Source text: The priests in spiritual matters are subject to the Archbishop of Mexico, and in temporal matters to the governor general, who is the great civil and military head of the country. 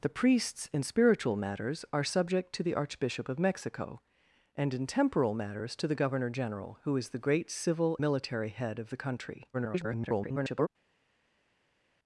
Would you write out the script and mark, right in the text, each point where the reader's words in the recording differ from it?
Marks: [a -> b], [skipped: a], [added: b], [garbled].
The priests in spiritual matters are subject to the Archbishop of Mexico, and in temporal matters to the governor general, who is the great civil [skipped: and] military head of the country. [garbled]